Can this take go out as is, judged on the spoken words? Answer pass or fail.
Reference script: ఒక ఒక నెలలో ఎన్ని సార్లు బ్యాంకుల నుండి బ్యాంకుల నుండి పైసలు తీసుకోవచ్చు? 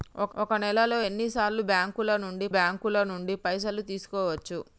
pass